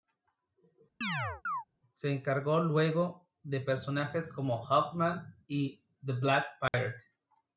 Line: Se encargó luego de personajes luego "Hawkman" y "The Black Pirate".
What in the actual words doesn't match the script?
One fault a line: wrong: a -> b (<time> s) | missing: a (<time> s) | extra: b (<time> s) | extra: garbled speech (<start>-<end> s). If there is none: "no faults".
wrong: luego -> como (4.3 s)